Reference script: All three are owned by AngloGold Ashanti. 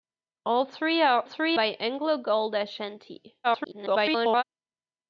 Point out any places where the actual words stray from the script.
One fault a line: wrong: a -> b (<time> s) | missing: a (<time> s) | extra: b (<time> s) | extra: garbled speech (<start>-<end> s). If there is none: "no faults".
wrong: owned -> three (1.2 s)
extra: garbled speech (3.4-4.4 s)